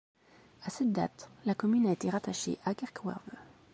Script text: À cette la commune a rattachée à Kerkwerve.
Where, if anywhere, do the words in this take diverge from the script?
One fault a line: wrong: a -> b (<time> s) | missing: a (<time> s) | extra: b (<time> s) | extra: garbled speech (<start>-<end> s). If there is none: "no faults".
extra: date (0.9 s)
extra: été (1.9 s)